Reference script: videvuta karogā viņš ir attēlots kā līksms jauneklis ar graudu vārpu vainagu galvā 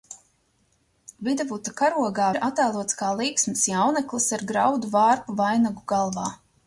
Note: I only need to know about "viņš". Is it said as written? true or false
false